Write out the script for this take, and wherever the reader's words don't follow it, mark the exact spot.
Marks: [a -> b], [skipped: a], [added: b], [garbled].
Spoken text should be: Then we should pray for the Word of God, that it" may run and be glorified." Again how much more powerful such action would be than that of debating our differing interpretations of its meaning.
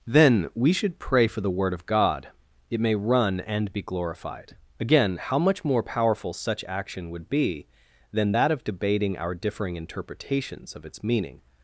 Then we should pray for the Word of God, [skipped: that] it" may run and be glorified." Again how much more powerful such action would be than that of debating our differing interpretations of its meaning.